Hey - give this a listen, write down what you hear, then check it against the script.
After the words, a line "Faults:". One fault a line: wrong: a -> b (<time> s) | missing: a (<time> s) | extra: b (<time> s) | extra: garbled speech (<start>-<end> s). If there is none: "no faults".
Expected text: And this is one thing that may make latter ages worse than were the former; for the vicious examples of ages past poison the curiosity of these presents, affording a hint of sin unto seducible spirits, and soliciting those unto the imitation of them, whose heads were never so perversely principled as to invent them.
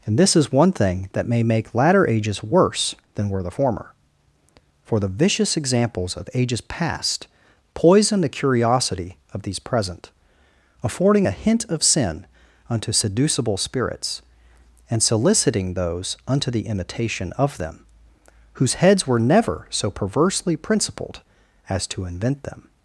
And this is one thing that may make latter ages worse than were the former; for the vicious examples of ages past poison the curiosity of these present, affording a hint of sin unto seducible spirits, and soliciting those unto the imitation of them, whose heads were never so perversely principled as to invent them.
Faults:
wrong: presents -> present (9.6 s)